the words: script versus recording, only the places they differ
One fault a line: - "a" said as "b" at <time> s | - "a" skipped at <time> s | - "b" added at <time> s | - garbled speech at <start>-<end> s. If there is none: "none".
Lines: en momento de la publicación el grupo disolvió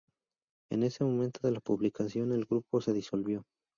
- "ese" added at 0.8 s
- "se" added at 2.8 s